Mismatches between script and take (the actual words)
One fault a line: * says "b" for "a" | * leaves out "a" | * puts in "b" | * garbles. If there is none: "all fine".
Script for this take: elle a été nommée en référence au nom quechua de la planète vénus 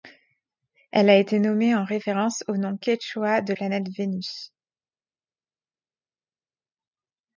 * leaves out "la"